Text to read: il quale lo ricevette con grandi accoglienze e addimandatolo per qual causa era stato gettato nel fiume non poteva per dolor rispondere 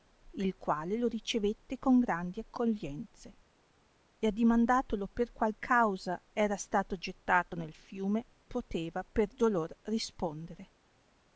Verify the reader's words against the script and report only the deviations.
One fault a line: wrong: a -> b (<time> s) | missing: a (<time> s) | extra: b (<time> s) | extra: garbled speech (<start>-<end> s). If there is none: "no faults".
missing: non (8.2 s)